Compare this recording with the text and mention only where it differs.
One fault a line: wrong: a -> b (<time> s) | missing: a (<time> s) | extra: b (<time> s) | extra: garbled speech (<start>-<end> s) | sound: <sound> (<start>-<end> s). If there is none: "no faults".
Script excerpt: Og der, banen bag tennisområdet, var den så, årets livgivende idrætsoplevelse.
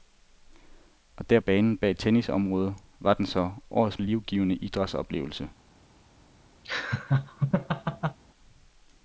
sound: laugh (6.6-8.2 s)